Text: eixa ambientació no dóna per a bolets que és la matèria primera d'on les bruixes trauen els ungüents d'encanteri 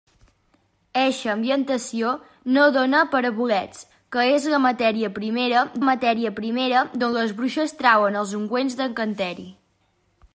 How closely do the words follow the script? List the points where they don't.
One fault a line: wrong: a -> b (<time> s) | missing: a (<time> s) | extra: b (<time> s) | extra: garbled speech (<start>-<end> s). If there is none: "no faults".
extra: matèria primera (5.8 s)